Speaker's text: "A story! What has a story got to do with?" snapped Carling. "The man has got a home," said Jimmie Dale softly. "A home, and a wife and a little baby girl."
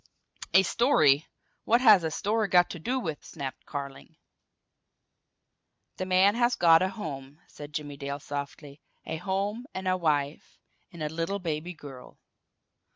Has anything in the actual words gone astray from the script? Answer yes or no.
no